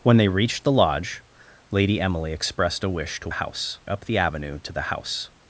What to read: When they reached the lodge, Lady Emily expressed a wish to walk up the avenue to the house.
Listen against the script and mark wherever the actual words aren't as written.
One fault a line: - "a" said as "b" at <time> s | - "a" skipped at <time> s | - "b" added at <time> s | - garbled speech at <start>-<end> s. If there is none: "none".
- "walk" said as "house" at 3.3 s